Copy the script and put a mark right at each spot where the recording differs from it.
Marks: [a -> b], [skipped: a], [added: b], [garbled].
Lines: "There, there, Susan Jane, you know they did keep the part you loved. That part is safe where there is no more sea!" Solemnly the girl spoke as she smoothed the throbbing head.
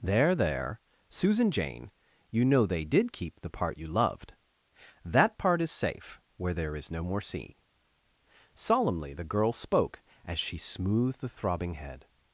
"There, there, Susan Jane, you know they did keep the part you loved. That part is safe where there is no more sea!" Solemnly the girl spoke as she smoothed the throbbing head.